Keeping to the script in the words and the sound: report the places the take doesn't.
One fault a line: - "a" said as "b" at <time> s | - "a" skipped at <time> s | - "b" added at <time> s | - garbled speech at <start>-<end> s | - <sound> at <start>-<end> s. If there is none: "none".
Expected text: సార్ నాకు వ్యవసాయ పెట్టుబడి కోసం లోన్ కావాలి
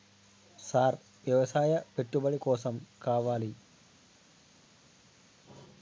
- "నాకు" skipped at 1.0 s
- "లోన్" skipped at 2.7 s